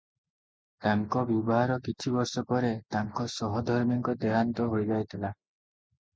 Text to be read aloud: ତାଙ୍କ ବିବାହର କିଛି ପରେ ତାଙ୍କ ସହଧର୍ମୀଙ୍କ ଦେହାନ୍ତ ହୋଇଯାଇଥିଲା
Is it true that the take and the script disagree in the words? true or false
true